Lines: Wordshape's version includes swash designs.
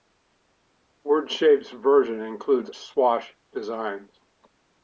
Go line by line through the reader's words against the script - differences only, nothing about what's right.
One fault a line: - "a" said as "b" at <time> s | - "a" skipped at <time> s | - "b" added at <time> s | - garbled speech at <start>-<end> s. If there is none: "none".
none